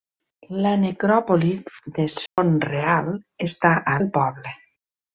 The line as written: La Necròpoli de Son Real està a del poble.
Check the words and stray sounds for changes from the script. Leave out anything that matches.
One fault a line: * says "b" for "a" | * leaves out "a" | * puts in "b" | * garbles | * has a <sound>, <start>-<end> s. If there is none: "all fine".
* has a dropout, 2.3-2.4 s